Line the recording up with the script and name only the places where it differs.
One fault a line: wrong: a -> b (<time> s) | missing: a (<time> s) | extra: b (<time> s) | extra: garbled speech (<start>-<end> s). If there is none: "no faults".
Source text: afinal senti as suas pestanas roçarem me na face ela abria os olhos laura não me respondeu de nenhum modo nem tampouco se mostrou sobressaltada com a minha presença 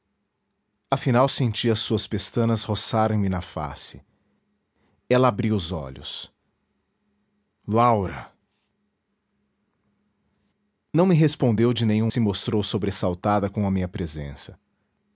missing: modo nem tampouco (12.1 s)